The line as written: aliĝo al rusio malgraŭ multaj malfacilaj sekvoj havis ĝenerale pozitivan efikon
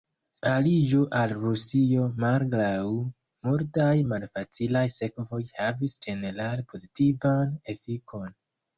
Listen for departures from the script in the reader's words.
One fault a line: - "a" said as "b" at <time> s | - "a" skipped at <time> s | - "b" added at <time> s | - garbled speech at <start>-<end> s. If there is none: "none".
none